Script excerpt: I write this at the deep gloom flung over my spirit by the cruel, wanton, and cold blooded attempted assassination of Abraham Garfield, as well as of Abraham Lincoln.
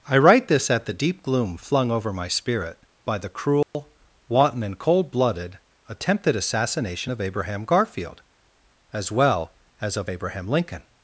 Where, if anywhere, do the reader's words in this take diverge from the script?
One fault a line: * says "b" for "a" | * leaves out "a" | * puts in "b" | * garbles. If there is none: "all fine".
all fine